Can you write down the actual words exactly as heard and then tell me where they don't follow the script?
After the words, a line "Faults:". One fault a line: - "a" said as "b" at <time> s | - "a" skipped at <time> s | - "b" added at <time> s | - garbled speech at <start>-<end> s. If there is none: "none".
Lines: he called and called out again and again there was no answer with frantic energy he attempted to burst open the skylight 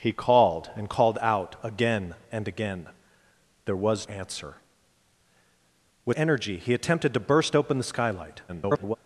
he called and called out again and again there was answer with energy he attempted to burst open the skylight [garbled]
Faults:
- "no" skipped at 4.1 s
- "frantic" skipped at 6.2 s
- garbled speech at 8.5-9.0 s